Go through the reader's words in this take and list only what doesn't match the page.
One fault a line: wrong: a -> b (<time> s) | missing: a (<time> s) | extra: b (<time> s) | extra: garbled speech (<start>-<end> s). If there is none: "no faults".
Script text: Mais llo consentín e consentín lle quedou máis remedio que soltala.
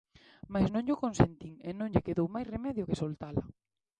extra: non (0.7 s)
wrong: consentín -> non (1.8 s)